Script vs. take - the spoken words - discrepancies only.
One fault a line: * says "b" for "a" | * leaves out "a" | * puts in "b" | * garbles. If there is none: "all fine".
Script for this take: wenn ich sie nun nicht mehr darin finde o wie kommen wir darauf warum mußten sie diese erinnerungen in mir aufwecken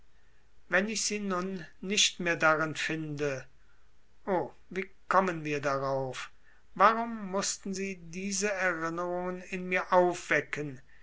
all fine